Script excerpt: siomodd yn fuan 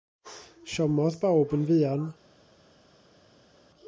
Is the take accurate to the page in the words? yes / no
no